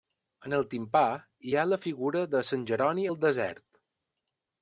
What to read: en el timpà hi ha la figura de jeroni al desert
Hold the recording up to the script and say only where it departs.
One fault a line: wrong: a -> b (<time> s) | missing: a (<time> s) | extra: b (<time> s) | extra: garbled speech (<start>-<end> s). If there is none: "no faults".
extra: sant (2.5 s)